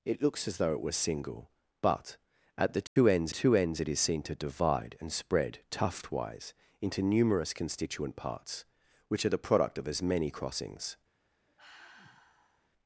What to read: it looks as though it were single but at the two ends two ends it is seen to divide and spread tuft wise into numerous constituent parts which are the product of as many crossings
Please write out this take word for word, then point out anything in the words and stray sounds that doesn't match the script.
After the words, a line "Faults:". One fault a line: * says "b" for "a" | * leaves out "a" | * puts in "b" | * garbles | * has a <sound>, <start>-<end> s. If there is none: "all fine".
it looks as though it were single but at the two ends two ends it is seen to divide and spread tuft wise into numerous constituent parts which are the product of as many crossings
Faults:
* has a dropout, 2.9-3.0 s
* has a sigh, 11.5-12.7 s